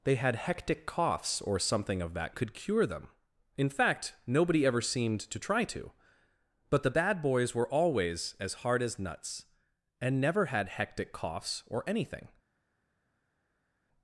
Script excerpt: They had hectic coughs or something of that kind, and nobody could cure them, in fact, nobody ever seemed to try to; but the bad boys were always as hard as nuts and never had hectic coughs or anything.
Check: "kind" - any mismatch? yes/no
yes